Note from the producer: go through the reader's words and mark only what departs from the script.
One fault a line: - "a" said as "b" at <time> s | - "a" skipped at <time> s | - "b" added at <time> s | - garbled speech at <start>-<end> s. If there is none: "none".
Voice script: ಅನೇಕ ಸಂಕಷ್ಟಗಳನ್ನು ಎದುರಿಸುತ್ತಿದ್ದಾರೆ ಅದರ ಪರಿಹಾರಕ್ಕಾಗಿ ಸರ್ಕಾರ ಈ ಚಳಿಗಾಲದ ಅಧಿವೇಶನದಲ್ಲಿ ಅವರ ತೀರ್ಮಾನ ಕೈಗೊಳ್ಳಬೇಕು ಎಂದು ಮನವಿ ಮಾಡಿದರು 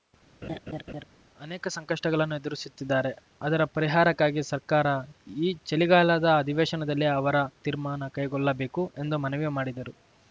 none